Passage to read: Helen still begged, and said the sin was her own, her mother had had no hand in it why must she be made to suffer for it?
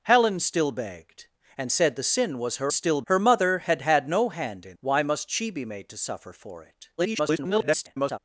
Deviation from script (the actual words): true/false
true